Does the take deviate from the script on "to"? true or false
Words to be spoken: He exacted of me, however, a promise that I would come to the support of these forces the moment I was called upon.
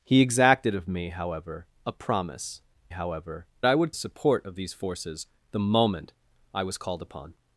true